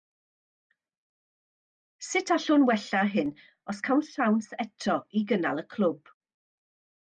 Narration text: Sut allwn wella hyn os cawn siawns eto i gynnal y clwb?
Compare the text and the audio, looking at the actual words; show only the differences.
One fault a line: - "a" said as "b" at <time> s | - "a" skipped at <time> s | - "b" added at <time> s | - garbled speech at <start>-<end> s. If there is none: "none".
none